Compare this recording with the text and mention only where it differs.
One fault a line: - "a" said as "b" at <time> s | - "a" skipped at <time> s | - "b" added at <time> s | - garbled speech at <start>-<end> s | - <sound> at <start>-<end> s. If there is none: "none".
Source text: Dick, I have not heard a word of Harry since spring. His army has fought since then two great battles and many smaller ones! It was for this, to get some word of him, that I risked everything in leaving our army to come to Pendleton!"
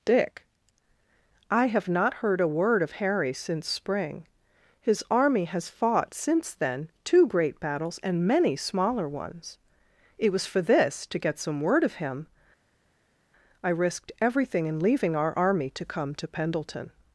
- "that" skipped at 12.2 s